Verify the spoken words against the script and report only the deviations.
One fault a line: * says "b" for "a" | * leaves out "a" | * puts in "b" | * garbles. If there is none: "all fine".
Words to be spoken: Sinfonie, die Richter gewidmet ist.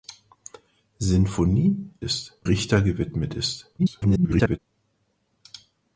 * says "ist" for "die"
* garbles